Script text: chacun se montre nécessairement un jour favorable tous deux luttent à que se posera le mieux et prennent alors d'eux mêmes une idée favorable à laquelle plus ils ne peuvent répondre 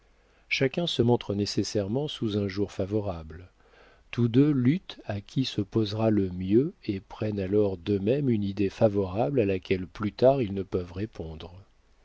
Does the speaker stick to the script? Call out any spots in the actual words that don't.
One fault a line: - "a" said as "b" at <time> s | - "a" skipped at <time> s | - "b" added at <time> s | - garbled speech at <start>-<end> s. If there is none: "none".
- "sous" added at 2.1 s
- "que" said as "qui" at 5.2 s
- "tard" added at 10.1 s